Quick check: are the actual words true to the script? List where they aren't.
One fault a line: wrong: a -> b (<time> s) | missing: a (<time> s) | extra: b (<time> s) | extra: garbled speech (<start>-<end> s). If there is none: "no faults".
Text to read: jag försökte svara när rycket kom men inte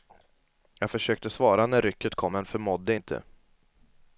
extra: förmådde (2.4 s)